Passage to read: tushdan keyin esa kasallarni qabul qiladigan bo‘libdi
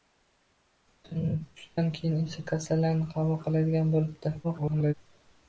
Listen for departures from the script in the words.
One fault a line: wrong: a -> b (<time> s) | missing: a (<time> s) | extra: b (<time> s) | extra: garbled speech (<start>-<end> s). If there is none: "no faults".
extra: garbled speech (4.4-4.9 s)